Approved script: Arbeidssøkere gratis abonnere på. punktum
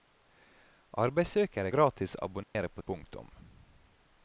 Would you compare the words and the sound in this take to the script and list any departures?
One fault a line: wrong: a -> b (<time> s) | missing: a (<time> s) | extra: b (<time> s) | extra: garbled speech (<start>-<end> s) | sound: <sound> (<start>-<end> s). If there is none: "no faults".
sound: dropout (2.4-2.6 s)